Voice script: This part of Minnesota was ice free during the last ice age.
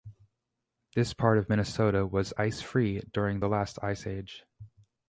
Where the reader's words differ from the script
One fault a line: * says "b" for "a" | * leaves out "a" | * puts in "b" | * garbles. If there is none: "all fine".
all fine